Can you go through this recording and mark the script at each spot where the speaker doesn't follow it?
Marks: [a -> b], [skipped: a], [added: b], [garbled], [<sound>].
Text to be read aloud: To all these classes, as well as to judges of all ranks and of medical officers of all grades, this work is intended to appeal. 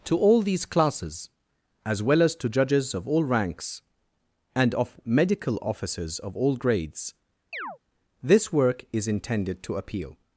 To all these classes, as well as to judges of all ranks and of medical officers of all grades, [chirp] this work is intended to appeal.